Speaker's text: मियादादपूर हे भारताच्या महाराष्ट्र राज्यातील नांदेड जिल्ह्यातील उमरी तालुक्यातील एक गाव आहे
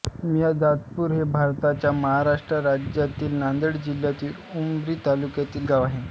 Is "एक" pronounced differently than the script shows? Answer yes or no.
yes